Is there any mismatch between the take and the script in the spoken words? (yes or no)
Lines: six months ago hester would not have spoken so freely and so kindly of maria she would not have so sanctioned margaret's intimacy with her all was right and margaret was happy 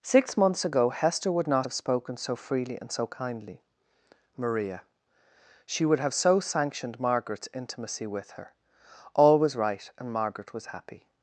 yes